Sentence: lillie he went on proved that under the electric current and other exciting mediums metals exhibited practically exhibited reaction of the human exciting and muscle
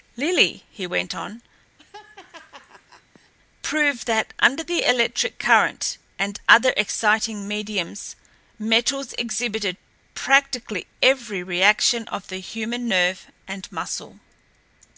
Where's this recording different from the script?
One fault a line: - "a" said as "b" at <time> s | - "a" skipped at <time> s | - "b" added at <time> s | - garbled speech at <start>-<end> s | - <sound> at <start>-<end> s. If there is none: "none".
- laugh at 1.8-3.3 s
- "exhibited" said as "every" at 11.0 s
- "exciting" said as "nerve" at 12.9 s